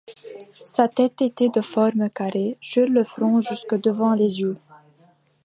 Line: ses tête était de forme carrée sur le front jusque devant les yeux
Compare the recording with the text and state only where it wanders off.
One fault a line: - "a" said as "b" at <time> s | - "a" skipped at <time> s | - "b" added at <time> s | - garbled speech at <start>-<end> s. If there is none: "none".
- "ses" said as "sa" at 0.7 s